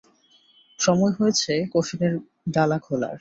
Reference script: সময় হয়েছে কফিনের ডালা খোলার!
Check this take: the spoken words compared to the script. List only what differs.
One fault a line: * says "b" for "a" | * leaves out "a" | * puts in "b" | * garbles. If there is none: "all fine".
all fine